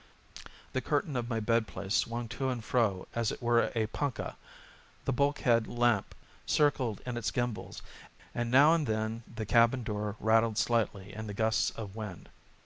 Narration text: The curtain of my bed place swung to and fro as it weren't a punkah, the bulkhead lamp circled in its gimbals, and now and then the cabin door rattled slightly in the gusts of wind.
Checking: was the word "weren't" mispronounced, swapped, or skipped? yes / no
yes